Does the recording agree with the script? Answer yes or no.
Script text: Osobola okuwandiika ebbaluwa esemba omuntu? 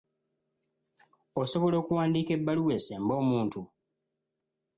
yes